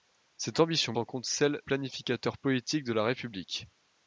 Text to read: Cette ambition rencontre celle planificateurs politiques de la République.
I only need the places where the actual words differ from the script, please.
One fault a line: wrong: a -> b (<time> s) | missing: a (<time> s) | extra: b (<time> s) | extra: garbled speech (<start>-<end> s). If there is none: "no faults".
no faults